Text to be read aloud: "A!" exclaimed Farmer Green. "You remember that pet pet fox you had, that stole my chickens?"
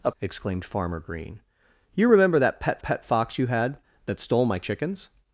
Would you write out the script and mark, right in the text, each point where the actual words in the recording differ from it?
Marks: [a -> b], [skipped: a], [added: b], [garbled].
"A!" exclaimed Farmer Green. "You remember that pet pet fox you had, that stole my chickens?"